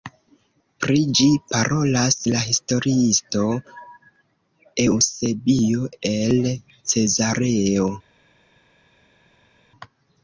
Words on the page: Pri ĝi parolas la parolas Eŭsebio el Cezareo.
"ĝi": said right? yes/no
yes